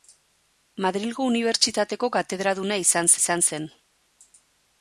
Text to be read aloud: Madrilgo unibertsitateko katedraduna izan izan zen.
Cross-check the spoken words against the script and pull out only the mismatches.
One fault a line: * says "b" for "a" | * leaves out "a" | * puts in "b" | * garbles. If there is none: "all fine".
all fine